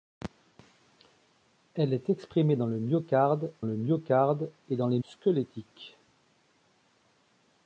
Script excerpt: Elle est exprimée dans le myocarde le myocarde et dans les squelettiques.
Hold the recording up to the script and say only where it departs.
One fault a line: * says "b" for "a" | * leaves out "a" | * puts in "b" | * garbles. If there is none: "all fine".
all fine